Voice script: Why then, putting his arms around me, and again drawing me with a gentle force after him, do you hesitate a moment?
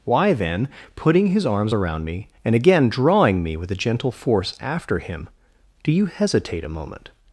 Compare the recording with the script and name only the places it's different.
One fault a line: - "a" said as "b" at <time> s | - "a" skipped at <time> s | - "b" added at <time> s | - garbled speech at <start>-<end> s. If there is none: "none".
none